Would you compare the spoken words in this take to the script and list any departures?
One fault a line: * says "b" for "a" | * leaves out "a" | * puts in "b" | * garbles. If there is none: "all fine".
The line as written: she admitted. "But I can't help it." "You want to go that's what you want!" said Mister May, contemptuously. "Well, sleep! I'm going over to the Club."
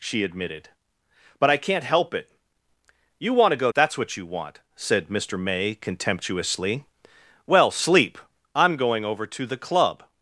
all fine